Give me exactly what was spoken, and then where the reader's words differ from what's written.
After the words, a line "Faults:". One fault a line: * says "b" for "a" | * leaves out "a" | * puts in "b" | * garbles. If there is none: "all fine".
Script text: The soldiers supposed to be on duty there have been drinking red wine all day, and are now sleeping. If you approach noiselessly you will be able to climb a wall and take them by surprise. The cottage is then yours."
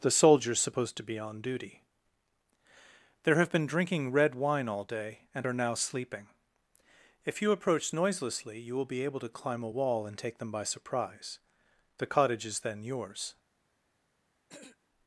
The soldiers supposed to be on duty there have been drinking red wine all day, and are now sleeping. If you approach noiselessly you will be able to climb a wall and take them by surprise. The cottage is then yours."
Faults:
all fine